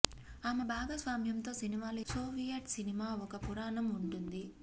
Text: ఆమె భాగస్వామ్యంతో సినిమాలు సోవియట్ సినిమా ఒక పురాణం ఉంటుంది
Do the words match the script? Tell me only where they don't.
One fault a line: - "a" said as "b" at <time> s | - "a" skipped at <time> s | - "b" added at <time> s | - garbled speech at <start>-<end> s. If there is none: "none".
none